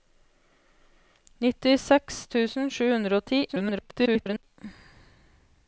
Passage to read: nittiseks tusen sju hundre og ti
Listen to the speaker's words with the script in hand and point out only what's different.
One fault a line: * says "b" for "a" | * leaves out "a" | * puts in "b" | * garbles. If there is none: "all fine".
* garbles